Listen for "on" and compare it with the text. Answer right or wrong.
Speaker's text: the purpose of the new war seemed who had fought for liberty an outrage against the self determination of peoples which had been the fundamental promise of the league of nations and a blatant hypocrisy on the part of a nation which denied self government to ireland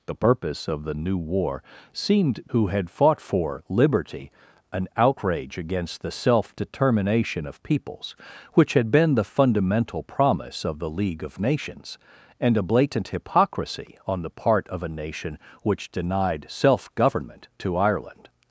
right